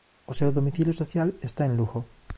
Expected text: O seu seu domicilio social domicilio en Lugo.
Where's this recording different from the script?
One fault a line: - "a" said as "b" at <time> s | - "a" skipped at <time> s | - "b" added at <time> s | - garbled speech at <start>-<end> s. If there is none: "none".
- "seu" skipped at 0.5 s
- "domicilio" said as "está" at 1.4 s